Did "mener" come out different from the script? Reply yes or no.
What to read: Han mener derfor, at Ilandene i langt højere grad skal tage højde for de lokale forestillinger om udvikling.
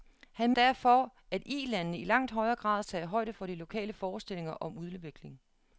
yes